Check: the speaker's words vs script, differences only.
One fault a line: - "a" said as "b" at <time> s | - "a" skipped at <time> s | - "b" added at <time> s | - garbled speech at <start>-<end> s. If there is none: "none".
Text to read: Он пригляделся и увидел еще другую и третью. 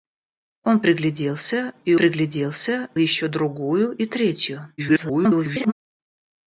- "увидел" said as "пригляделся" at 1.9 s
- garbled speech at 4.8-5.7 s